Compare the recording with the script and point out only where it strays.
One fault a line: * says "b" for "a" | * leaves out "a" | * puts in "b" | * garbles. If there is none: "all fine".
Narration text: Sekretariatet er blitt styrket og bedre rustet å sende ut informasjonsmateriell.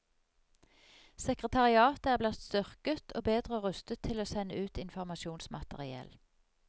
* puts in "til"